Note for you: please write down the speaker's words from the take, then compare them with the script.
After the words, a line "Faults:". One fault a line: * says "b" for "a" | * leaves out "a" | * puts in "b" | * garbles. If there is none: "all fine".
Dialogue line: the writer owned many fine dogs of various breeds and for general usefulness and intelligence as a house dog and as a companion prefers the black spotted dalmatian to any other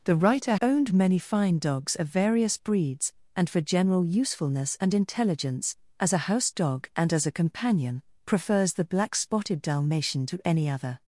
the writer owned many fine dogs of various breeds and for general usefulness and intelligence as a house dog and as a companion prefers the black spotted dalmatian to any other
Faults:
all fine